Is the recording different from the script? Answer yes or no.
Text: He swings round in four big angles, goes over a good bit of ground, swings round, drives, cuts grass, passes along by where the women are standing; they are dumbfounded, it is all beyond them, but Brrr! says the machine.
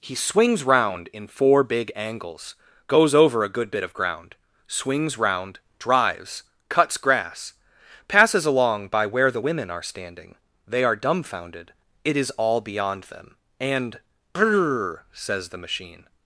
yes